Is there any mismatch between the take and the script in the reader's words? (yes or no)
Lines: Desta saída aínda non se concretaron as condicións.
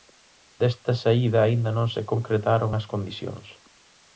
no